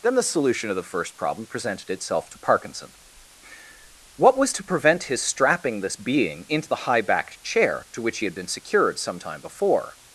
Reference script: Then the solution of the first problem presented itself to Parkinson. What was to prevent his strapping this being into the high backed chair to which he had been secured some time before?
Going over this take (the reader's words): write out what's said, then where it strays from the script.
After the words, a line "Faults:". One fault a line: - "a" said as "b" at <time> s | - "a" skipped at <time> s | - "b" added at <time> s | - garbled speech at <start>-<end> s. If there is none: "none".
Then the solution of the first problem presented itself to Parkinson. What was to prevent his strapping this being into the high backed chair to which he had been secured some time before?
Faults:
none